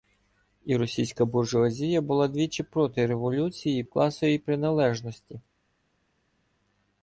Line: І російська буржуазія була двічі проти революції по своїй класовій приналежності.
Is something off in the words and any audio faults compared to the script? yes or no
yes